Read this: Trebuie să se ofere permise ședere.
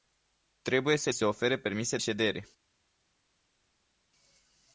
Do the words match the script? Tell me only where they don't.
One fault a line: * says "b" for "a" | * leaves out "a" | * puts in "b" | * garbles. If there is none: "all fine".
all fine